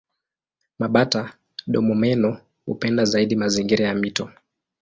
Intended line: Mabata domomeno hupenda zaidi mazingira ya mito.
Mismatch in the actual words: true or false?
false